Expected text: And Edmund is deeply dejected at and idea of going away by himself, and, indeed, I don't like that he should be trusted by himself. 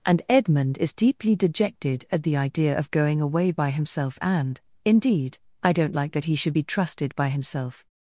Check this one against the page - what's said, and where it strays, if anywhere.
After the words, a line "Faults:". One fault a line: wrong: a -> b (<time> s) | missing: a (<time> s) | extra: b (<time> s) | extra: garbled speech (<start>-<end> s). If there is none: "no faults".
And Edmund is deeply dejected at the idea of going away by himself, and, indeed, I don't like that he should be trusted by himself.
Faults:
wrong: and -> the (2.2 s)